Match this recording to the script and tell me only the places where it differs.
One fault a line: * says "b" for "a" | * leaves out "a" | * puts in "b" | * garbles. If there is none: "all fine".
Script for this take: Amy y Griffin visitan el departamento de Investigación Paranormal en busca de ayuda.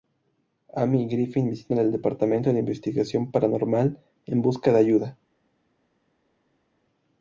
all fine